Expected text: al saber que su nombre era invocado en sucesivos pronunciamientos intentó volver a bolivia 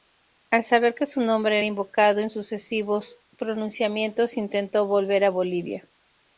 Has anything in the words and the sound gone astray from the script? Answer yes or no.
no